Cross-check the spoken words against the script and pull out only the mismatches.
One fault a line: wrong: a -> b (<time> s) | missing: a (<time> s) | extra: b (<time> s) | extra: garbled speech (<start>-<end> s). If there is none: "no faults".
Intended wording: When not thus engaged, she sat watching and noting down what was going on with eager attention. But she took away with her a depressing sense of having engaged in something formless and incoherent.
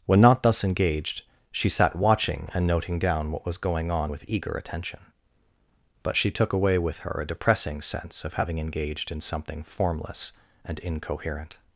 no faults